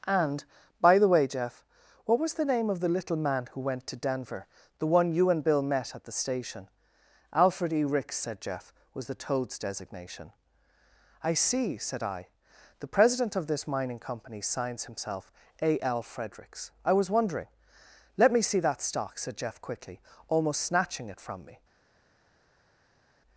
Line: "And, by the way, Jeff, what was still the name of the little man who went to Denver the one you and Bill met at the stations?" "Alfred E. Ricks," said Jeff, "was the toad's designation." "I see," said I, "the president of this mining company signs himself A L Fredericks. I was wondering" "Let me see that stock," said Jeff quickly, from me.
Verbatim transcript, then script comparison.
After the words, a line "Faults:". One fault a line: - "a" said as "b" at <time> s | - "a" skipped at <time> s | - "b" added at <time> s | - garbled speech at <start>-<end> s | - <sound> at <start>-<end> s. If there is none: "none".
"And, by the way, Jeff, what was the name of the little man who went to Denver the one you and Bill met at the station?" "Alfred E. Ricks," said Jeff, "was the toad's designation." "I see," said I, "the president of this mining company signs himself A L Fredericks. I was wondering" "Let me see that stock," said Jeff quickly, almost snatching it from me.
Faults:
- "still" skipped at 2.3 s
- "stations" said as "station" at 6.1 s
- "almost snatching it" added at 20.3 s